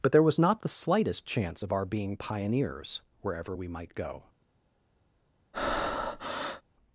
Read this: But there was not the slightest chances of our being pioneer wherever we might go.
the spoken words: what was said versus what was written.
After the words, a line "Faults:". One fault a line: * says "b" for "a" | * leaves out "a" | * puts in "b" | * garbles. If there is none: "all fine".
But there was not the slightest chance of our being pioneers wherever we might go.
Faults:
* says "chance" for "chances"
* says "pioneers" for "pioneer"